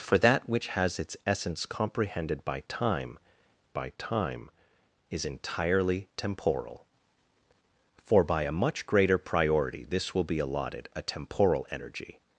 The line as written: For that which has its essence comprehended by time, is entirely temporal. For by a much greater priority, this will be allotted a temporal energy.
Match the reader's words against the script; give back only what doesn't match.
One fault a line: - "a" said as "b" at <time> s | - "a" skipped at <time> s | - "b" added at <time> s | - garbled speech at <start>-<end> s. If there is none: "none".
- "by time" added at 3.7 s